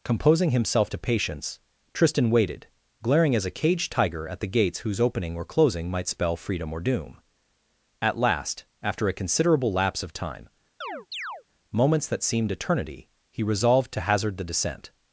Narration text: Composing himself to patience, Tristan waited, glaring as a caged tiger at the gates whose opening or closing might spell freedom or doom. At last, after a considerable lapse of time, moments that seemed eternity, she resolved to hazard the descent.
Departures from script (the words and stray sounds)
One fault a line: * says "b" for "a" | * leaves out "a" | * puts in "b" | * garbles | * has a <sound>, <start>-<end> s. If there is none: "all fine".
* has a chirp, 10.8-11.4 s
* says "he" for "she"